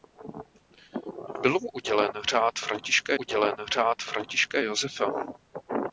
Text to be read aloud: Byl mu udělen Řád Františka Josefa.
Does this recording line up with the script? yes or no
no